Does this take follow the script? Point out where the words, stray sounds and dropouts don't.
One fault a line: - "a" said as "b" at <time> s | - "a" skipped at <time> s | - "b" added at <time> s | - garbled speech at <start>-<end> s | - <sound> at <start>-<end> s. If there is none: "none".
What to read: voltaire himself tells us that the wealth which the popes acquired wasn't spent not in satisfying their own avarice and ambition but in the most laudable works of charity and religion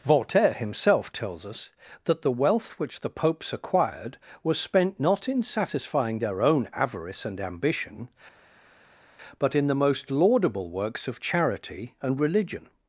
- "wasn't" said as "was" at 4.4 s